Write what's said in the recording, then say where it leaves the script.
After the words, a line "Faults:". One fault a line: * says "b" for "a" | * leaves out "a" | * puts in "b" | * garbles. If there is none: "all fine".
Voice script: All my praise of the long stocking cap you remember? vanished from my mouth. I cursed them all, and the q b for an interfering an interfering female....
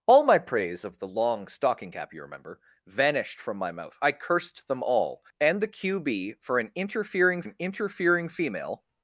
All my praise of the long stocking cap you remember? vanished from my mouth. I cursed them all, and the q b for an interfering an interfering female....
Faults:
all fine